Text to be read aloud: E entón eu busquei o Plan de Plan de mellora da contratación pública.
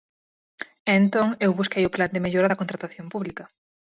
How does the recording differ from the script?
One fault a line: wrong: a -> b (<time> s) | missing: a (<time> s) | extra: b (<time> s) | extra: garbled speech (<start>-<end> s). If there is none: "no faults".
missing: Plan de (2.2 s)